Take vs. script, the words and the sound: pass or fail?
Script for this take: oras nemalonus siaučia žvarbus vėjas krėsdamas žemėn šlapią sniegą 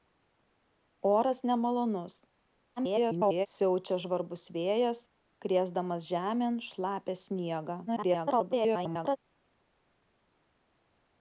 fail